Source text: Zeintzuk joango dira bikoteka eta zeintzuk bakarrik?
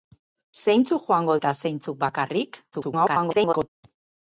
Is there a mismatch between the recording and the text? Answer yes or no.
yes